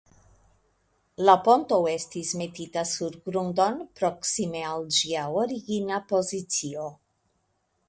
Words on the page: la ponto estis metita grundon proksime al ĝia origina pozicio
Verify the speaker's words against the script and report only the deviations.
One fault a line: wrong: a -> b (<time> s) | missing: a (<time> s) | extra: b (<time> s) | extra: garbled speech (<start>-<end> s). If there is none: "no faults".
extra: sur (2.9 s)